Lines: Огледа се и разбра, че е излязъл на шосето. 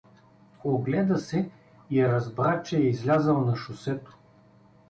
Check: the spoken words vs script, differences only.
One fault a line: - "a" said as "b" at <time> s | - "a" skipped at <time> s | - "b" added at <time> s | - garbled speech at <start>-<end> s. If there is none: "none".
none